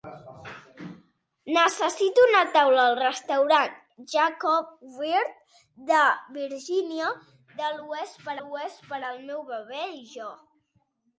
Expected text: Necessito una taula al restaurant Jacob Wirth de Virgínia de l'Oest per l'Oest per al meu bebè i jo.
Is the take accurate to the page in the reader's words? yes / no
yes